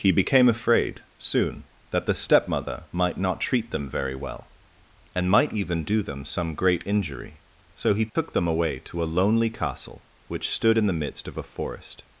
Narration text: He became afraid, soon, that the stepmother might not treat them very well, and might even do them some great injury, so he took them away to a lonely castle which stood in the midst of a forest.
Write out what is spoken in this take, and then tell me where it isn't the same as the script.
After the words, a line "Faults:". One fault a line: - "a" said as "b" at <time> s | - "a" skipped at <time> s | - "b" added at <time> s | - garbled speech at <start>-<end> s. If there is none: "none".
He became afraid, soon, that the stepmother might not treat them very well, and might even do them some great injury, so he took them away to a lonely castle which stood in the midst of a forest.
Faults:
none